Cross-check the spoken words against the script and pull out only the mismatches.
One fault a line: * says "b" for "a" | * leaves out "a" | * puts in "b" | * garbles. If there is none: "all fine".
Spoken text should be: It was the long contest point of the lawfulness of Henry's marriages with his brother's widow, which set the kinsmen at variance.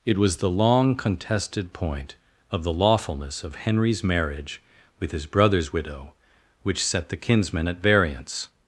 * says "contested" for "contest"
* says "marriage" for "marriages"